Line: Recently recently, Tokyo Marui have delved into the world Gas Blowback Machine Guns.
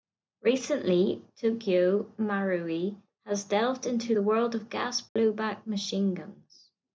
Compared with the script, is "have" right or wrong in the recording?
wrong